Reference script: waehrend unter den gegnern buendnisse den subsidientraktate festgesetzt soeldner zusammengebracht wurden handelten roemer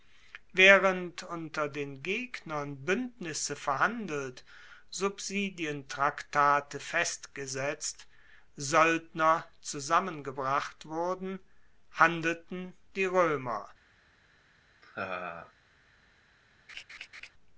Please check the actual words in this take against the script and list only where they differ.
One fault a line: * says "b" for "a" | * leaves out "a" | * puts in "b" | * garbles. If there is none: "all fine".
* says "verhandelt" for "den"
* puts in "die"